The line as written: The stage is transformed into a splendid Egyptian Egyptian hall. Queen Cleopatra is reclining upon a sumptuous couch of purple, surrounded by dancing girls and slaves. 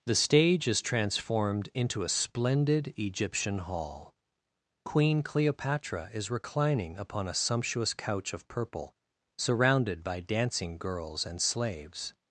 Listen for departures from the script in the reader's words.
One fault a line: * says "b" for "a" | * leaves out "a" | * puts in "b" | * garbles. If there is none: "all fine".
* leaves out "Egyptian"